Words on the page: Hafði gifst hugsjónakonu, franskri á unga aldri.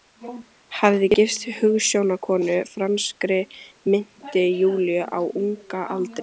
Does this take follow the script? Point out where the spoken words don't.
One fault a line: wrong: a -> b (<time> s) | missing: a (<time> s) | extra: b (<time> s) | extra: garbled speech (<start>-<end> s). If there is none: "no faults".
extra: minnti Júlíu (3.9 s)